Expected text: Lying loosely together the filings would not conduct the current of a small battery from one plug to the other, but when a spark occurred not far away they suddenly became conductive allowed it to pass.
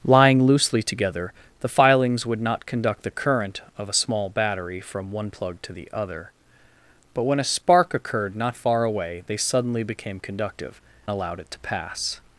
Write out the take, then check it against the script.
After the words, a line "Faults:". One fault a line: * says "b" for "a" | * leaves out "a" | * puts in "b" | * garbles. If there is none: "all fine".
Lying loosely together the filings would not conduct the current of a small battery from one plug to the other, but when a spark occurred not far away they suddenly became conductive allowed it to pass.
Faults:
all fine